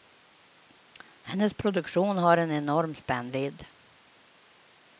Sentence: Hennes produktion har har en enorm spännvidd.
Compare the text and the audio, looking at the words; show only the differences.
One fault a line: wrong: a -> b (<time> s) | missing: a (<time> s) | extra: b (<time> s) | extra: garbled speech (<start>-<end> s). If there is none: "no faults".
missing: har (2.4 s)